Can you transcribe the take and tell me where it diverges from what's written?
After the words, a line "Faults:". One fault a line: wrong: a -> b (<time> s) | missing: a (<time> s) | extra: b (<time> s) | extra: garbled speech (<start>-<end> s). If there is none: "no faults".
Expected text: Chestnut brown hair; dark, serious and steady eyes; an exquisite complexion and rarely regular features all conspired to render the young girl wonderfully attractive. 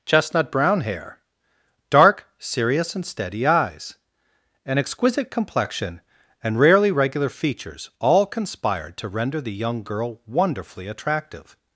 Chestnut brown hair; dark, serious and steady eyes; an exquisite complexion and rarely regular features all conspired to render the young girl wonderfully attractive.
Faults:
no faults